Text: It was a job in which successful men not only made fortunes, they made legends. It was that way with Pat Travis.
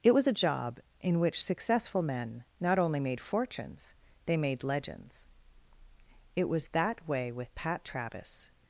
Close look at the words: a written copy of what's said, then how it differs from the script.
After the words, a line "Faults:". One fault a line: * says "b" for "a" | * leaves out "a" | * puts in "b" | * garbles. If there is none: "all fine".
It was a job in which successful men not only made fortunes, they made legends. It was that way with Pat Travis.
Faults:
all fine